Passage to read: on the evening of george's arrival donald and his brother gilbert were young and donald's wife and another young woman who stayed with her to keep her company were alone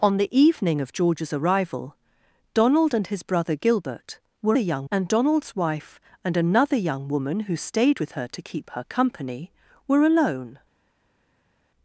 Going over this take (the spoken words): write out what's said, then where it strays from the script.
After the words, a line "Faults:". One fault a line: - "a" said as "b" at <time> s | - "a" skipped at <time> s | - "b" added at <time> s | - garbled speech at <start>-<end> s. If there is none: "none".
on the evening of george's arrival donald and his brother gilbert were young and donald's wife and another young woman who stayed with her to keep her company were alone
Faults:
none